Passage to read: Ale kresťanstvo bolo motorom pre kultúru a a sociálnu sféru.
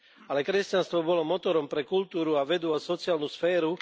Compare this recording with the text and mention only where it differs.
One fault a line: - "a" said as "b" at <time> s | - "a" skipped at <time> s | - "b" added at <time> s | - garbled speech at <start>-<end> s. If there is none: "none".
- "vedu" added at 2.4 s